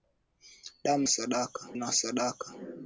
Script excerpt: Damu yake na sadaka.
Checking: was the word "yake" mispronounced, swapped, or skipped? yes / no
yes